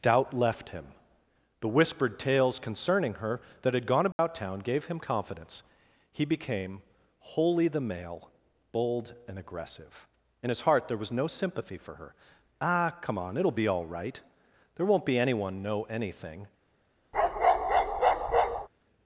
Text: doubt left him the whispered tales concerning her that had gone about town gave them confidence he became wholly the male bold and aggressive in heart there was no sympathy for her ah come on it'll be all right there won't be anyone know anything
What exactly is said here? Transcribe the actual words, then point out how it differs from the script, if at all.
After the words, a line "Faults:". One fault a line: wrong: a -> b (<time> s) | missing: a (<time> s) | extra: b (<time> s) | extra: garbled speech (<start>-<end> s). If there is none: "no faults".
doubt left him the whispered tales concerning her that had gone about town gave him confidence he became wholly the male bold and aggressive in his heart there was no sympathy for her ah come on it'll be all right there won't be anyone know anything
Faults:
wrong: them -> him (4.8 s)
extra: his (10.5 s)